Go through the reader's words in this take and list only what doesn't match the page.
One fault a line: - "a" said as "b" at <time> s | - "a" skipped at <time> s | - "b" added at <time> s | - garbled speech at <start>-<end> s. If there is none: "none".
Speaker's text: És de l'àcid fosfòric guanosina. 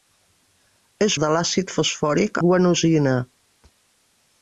none